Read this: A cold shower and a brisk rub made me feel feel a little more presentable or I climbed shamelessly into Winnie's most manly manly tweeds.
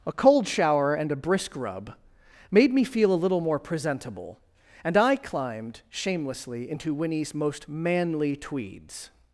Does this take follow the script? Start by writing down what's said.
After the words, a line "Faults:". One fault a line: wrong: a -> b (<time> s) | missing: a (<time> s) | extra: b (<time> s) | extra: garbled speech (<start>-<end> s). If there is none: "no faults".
A cold shower and a brisk rub made me feel a little more presentable and I climbed shamelessly into Winnie's most manly tweeds.
Faults:
missing: feel (3.1 s)
wrong: or -> and (4.8 s)
missing: manly (8.4 s)